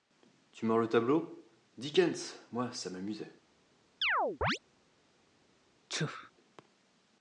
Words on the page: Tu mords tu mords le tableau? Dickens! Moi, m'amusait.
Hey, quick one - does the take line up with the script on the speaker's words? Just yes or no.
no